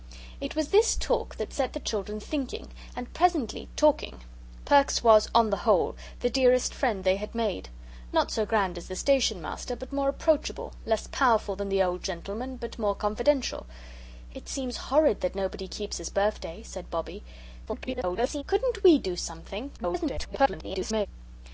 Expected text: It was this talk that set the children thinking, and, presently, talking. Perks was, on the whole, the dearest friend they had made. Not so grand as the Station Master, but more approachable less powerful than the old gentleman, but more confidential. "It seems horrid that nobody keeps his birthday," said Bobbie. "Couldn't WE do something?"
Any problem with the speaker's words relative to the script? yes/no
yes